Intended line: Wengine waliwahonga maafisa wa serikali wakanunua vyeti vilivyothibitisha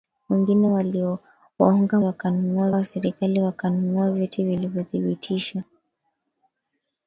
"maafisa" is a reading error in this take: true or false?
true